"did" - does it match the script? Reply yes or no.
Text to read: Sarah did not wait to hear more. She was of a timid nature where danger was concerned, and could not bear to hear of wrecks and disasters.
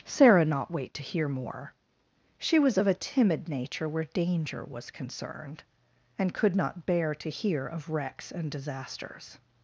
no